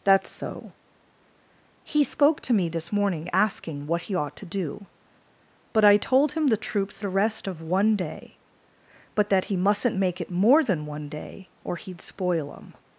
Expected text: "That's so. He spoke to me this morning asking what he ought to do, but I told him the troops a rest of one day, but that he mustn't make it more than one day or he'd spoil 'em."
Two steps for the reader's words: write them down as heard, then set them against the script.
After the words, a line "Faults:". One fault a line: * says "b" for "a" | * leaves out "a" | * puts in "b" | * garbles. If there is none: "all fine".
"That's so. He spoke to me this morning asking what he ought to do, but I told him the troops a rest of one day, but that he mustn't make it more than one day or he'd spoil 'em."
Faults:
all fine